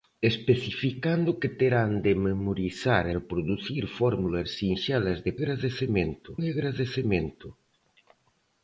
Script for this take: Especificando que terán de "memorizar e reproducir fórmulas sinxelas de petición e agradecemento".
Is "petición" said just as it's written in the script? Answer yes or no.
no